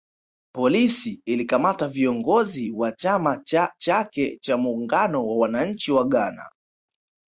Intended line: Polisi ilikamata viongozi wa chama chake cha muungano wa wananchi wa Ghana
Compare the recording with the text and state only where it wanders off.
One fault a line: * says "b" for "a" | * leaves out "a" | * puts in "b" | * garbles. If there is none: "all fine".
* puts in "cha"